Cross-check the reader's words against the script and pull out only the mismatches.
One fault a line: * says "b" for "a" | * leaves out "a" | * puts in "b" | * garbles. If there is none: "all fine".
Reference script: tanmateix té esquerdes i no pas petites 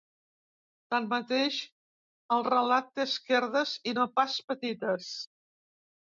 * puts in "el relat"